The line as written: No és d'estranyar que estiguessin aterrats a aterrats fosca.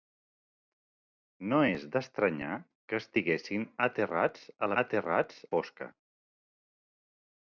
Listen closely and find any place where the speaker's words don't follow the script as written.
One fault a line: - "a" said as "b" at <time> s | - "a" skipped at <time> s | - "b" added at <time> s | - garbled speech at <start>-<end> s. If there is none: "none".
none